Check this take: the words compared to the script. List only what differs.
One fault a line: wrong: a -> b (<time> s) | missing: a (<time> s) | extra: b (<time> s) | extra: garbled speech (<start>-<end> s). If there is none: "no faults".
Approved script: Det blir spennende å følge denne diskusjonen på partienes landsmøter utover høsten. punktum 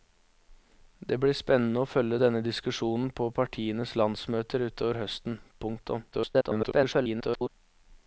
extra: garbled speech (6.1-7.5 s)